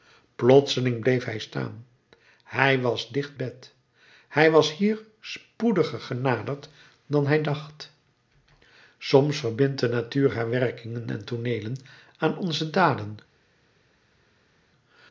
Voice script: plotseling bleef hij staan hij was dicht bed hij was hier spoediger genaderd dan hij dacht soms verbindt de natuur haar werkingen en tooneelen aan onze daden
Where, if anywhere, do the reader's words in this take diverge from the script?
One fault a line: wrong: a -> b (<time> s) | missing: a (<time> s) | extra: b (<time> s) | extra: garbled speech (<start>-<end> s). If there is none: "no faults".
no faults